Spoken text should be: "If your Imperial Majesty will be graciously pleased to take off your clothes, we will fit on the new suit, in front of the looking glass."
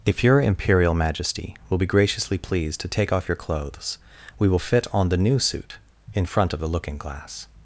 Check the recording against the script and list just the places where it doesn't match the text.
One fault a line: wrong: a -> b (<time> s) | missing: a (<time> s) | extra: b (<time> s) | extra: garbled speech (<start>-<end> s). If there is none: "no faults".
no faults